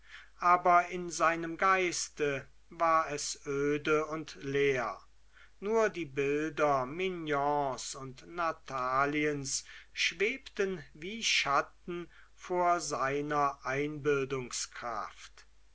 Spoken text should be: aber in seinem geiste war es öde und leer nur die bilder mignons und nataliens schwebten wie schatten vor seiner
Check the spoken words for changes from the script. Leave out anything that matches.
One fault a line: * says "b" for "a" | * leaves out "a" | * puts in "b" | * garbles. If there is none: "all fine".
all fine